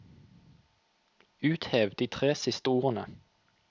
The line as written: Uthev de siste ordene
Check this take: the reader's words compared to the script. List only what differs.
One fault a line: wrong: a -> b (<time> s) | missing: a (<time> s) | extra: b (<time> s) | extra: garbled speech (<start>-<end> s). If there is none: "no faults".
extra: tre (2.1 s)